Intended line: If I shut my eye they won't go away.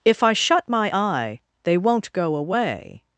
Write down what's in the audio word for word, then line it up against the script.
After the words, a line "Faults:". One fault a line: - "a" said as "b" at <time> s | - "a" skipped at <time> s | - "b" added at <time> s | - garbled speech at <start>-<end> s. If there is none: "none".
If I shut my eye they won't go away.
Faults:
none